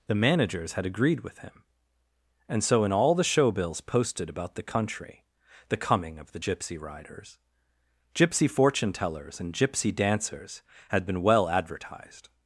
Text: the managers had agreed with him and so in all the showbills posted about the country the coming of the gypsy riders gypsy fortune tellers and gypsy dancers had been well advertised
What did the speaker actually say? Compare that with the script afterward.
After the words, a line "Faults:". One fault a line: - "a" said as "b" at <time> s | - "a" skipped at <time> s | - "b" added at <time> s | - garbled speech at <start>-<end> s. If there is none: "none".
the managers had agreed with him and so in all the showbills posted about the country the coming of the gypsy riders gypsy fortune tellers and gypsy dancers had been well advertised
Faults:
none